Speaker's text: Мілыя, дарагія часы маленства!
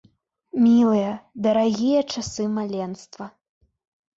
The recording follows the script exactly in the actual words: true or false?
true